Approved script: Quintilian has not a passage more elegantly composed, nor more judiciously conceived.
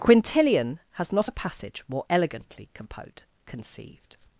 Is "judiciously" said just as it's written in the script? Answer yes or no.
no